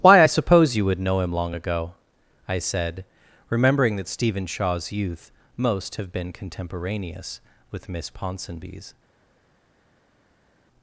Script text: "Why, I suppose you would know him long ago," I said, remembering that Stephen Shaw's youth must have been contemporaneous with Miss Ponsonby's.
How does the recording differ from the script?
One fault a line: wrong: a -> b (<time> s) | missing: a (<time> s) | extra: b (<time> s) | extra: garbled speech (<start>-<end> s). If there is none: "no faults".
wrong: must -> most (5.6 s)